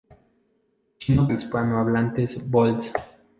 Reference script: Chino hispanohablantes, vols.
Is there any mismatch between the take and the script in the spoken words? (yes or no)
no